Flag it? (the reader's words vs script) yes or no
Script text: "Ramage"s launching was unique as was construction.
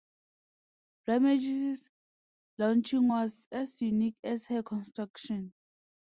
yes